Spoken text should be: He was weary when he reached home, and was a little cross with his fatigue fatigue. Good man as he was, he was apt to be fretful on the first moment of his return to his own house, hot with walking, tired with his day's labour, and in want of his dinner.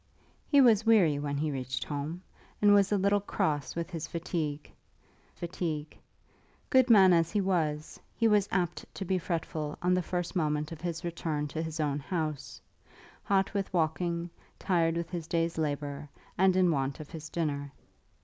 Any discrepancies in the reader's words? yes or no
no